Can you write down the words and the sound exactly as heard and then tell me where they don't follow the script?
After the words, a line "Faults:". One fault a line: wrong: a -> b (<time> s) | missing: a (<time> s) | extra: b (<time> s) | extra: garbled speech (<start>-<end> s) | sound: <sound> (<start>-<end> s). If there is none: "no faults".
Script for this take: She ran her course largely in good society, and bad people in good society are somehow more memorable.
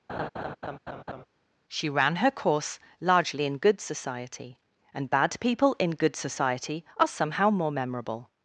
She ran her course largely in good society, and bad people in good society are somehow more memorable.
Faults:
sound: laugh (0.1-1.3 s)